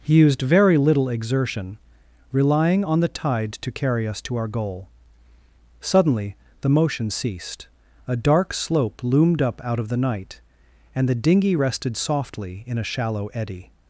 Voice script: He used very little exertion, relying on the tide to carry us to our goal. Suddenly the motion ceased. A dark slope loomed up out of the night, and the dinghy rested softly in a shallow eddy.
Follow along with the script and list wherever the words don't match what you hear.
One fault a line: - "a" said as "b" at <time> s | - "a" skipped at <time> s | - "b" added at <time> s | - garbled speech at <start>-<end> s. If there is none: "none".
none